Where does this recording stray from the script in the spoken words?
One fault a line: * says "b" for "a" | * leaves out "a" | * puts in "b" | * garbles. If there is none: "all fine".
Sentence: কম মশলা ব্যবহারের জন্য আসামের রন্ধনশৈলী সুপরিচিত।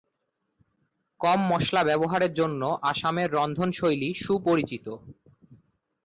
all fine